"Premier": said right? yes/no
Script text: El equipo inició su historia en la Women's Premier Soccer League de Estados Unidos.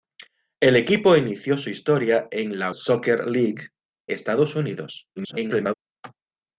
no